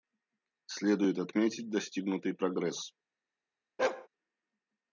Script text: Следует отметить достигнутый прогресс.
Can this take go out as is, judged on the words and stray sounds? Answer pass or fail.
fail